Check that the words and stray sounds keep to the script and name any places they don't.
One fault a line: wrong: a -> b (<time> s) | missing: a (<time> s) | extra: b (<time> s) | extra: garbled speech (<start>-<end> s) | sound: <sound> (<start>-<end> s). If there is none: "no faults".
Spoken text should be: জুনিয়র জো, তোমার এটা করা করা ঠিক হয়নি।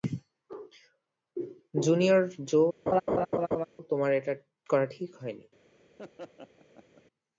sound: laugh (2.9-3.6 s)
missing: করা (4.8 s)
sound: laugh (6.0-7.0 s)